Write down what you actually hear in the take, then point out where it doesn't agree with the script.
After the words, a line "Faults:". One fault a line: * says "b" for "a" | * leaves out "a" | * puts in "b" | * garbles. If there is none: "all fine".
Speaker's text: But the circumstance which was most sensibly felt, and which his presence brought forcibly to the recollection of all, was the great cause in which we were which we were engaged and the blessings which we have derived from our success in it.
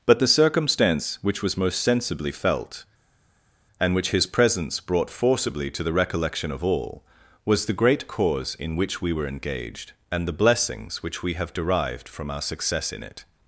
But the circumstance which was most sensibly felt, and which his presence brought forcibly to the recollection of all, was the great cause in which we were engaged and the blessings which we have derived from our success in it.
Faults:
* leaves out "which we were"